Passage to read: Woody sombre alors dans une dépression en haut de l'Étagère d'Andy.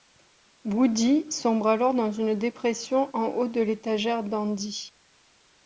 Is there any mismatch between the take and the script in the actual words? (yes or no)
no